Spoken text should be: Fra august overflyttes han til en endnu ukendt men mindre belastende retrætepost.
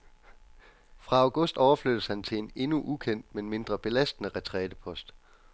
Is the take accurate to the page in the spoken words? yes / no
yes